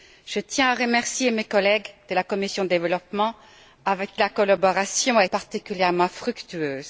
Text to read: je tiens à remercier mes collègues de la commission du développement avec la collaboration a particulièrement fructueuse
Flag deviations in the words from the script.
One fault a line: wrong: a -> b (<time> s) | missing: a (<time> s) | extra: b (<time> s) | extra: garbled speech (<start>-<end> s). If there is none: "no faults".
no faults